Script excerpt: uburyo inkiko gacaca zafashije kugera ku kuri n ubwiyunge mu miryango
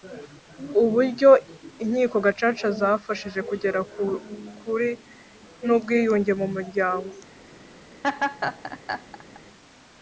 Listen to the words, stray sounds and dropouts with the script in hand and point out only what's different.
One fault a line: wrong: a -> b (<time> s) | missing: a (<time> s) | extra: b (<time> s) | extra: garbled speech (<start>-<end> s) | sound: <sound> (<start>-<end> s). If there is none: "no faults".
sound: laugh (8.0-9.4 s)